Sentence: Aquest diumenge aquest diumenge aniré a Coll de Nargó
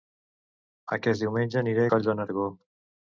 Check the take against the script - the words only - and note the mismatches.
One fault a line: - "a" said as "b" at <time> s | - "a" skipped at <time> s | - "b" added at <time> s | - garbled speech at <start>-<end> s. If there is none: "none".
- "aquest diumenge" skipped at 1.6 s